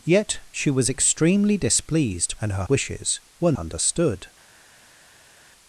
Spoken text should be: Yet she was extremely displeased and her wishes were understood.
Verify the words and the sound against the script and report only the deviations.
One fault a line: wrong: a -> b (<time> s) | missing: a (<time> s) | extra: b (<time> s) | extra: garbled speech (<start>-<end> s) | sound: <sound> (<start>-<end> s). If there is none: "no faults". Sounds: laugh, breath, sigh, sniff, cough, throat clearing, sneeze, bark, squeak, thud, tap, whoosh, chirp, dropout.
no faults